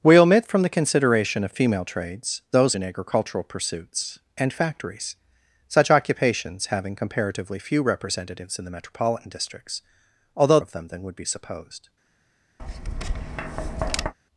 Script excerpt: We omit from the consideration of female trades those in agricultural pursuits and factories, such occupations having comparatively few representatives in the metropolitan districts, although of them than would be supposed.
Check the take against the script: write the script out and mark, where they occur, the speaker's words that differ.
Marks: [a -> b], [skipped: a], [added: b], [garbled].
We omit from the consideration of female trades those in agricultural pursuits and factories, such occupations having comparatively few representatives in the metropolitan districts, although of them than would be supposed.